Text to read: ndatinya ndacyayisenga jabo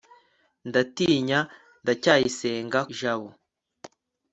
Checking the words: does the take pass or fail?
pass